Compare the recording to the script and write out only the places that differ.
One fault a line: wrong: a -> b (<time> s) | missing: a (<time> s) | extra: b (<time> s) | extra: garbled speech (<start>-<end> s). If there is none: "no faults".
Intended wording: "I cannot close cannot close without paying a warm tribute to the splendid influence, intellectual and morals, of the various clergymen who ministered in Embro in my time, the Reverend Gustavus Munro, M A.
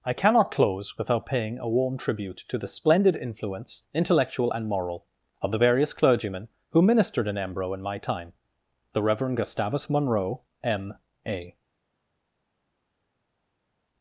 missing: cannot close (1.0 s)
wrong: morals -> moral (4.7 s)